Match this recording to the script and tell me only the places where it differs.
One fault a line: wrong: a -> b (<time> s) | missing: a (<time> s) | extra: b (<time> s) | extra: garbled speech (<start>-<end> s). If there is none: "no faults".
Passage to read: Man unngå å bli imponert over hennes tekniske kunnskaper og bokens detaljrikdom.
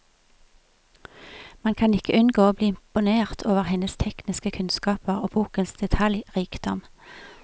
extra: kan ikke (1.8 s)